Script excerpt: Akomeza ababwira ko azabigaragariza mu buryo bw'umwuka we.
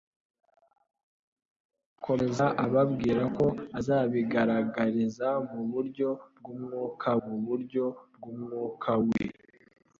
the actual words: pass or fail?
fail